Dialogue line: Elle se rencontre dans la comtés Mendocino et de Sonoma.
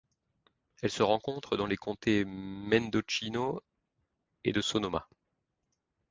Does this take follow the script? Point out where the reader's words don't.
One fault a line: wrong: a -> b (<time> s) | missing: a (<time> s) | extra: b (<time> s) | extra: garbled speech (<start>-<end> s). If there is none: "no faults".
wrong: la -> les (1.7 s)